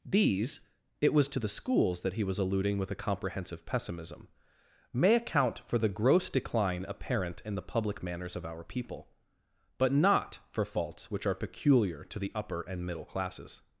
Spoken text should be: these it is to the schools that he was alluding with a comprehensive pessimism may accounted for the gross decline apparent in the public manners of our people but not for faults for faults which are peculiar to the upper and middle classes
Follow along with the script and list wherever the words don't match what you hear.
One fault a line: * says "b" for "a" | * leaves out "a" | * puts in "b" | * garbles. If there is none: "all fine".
* says "was" for "is"
* says "account" for "accounted"
* leaves out "for faults"